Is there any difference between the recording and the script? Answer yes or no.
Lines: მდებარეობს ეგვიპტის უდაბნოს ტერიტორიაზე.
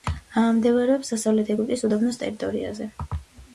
yes